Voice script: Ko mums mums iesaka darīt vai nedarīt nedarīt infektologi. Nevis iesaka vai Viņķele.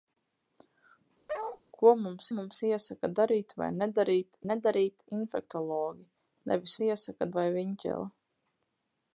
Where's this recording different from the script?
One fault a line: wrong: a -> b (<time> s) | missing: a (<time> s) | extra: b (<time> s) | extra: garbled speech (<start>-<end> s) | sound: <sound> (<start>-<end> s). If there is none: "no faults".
sound: bark (1.3-1.6 s)